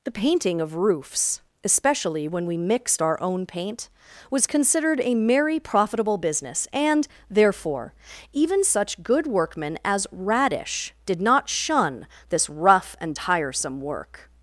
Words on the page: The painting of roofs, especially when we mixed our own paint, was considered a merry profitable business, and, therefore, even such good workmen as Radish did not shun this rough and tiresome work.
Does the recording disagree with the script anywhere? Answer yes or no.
no